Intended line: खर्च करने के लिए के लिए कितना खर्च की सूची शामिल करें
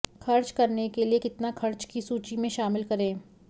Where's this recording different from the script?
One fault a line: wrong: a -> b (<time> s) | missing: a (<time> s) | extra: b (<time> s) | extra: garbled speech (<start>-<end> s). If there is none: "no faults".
missing: के लिए (1.2 s)
extra: में (2.4 s)